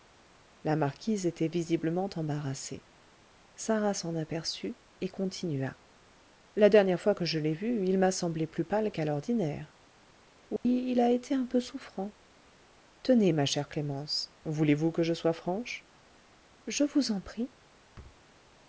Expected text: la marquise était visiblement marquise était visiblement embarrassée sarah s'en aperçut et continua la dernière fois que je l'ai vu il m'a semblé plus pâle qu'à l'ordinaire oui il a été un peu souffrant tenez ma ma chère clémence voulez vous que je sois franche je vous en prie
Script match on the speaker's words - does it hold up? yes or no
no